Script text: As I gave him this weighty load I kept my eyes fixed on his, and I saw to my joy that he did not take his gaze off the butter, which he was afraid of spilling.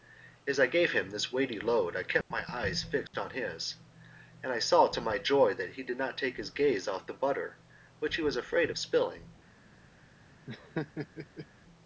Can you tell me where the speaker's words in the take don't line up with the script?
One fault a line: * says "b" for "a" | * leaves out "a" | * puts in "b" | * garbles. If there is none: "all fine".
all fine